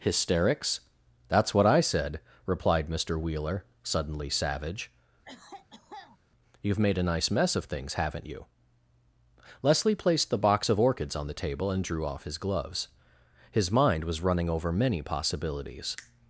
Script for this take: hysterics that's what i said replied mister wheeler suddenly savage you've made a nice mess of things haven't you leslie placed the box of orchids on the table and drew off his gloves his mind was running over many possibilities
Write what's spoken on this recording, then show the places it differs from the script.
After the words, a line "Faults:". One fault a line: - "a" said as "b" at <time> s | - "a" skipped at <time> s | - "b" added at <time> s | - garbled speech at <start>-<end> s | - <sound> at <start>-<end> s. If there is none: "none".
hysterics that's what i said replied mister wheeler suddenly savage you've made a nice mess of things haven't you leslie placed the box of orchids on the table and drew off his gloves his mind was running over many possibilities
Faults:
- cough at 5.2-6.2 s